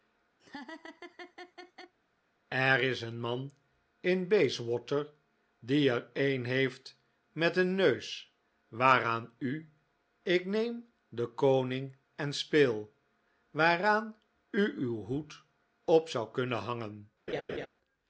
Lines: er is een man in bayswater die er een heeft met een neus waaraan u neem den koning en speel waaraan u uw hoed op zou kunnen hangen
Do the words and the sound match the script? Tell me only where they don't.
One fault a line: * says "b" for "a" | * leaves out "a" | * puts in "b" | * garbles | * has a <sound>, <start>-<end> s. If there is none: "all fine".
* has a laugh, 0.4-1.9 s
* puts in "ik"
* has a laugh, 17.3-17.7 s